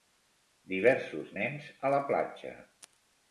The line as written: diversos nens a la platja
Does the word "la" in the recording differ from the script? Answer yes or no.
no